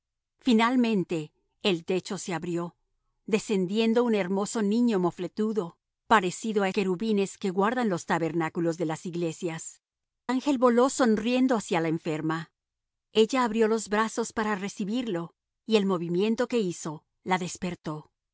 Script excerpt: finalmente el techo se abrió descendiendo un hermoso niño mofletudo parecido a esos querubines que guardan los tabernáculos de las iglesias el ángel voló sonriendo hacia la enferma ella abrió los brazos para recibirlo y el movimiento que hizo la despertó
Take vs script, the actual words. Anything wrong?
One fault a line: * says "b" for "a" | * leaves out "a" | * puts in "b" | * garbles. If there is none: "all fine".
* leaves out "esos"
* leaves out "el"